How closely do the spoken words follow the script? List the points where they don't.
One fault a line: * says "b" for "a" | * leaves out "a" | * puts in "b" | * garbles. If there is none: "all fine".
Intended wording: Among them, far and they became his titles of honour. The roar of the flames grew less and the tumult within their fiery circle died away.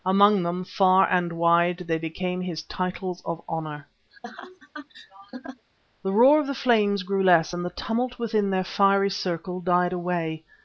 * puts in "wide"